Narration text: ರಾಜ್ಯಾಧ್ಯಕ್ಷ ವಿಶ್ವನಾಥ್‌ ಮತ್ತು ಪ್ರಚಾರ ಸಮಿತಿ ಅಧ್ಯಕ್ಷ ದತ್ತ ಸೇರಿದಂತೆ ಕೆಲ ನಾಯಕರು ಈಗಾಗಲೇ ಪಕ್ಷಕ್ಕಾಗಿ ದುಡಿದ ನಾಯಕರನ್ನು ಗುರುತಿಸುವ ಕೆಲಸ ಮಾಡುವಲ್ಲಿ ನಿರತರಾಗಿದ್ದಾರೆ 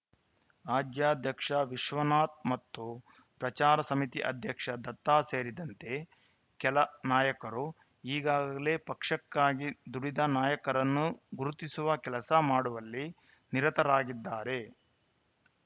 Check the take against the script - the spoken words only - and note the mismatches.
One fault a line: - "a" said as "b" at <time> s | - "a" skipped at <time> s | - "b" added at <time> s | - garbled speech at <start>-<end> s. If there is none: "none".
none